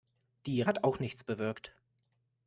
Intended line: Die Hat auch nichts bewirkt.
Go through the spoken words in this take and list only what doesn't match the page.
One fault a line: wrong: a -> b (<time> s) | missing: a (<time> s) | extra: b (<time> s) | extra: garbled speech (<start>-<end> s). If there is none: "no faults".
no faults